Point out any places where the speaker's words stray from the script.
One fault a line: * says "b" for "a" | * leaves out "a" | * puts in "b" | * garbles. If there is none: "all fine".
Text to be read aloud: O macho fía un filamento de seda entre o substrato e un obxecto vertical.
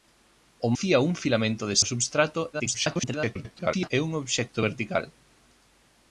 * leaves out "macho"
* leaves out "seda entre"
* garbles